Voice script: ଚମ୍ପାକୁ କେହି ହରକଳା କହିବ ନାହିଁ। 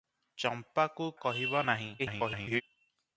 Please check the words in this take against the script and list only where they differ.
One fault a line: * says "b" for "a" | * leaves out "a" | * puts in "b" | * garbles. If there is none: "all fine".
* leaves out "କେହି ହରକଳା"
* garbles